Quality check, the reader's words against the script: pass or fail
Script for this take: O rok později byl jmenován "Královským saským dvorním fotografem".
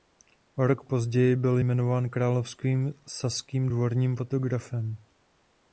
pass